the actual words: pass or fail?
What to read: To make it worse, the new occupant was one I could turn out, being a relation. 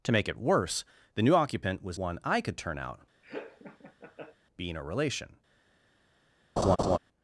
pass